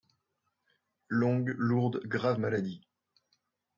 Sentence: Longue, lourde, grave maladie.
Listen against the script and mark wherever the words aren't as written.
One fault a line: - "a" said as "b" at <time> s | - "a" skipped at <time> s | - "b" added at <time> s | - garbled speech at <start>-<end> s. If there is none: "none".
none